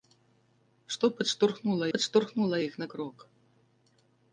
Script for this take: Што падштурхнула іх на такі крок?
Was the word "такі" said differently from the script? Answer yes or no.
yes